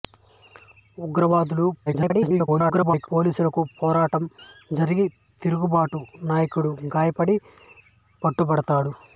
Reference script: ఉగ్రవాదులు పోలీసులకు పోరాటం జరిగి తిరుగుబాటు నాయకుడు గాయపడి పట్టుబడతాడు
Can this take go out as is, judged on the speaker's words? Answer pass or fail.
fail